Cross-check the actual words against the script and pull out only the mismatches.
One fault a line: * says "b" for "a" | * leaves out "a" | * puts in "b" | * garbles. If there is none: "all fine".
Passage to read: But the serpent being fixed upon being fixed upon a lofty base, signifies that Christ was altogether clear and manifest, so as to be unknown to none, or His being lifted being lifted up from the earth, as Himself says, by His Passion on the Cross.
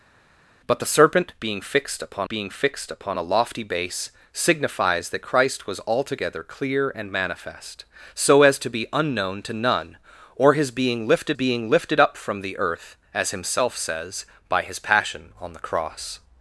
all fine